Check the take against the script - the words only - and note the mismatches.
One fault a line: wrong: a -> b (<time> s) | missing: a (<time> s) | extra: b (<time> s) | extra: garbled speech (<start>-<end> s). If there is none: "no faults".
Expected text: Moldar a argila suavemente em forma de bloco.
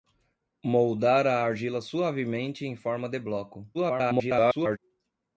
extra: garbled speech (3.7-4.8 s)